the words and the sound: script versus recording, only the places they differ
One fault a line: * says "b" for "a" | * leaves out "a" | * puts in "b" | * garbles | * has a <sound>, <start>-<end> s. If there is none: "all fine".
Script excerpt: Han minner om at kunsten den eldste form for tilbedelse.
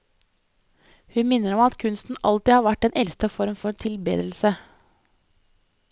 * says "Hun" for "Han"
* puts in "alltid har vært"